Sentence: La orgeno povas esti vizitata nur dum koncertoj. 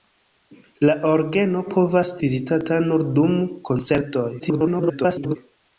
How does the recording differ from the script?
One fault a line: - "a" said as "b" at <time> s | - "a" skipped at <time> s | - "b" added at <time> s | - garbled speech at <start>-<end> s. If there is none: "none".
- "esti" skipped at 2.1 s
- garbled speech at 4.4-5.4 s